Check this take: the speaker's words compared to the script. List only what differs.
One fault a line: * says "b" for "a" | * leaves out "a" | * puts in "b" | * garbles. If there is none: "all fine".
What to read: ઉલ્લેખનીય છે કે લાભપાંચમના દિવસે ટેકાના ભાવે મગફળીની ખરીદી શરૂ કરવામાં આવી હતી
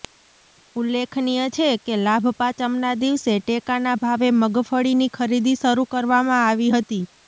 all fine